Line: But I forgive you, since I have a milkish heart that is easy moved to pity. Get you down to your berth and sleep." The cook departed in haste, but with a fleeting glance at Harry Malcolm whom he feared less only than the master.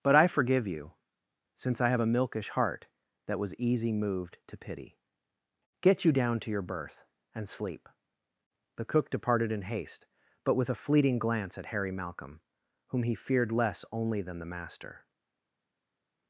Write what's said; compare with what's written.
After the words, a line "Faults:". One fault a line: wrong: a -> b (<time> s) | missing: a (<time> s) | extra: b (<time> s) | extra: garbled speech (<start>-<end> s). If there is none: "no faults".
But I forgive you, since I have a milkish heart that was easy moved to pity. Get you down to your berth and sleep." The cook departed in haste, but with a fleeting glance at Harry Malcolm whom he feared less only than the master.
Faults:
wrong: is -> was (3.4 s)